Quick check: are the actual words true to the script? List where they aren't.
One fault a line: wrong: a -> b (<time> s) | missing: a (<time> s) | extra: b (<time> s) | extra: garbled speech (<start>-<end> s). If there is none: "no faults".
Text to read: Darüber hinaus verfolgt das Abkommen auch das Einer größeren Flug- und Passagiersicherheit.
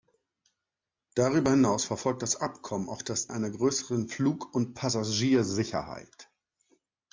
no faults